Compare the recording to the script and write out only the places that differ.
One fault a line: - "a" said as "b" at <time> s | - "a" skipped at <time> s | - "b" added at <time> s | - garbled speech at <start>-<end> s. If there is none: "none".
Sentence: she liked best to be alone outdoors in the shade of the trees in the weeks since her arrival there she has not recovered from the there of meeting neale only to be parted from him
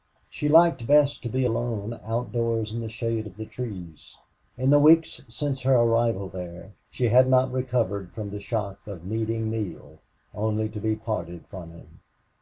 - "has" said as "had" at 7.1 s
- "there" said as "shock" at 8.4 s